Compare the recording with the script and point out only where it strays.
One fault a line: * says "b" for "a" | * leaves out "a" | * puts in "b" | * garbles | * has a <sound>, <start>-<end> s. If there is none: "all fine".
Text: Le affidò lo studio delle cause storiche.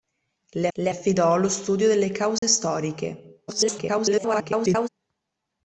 * puts in "le"
* has a dropout, 2.4-2.4 s
* garbles